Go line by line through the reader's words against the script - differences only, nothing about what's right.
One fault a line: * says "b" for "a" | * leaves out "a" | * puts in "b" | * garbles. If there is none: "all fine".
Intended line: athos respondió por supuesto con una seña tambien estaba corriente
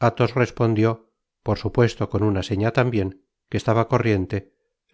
* puts in "que"